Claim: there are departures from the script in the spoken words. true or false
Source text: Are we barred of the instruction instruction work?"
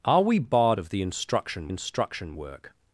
false